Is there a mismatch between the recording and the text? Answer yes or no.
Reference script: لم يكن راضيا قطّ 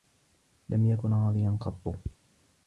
no